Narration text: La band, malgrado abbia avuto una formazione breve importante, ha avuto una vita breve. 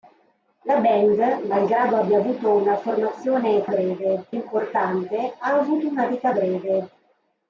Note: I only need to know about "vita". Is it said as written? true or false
true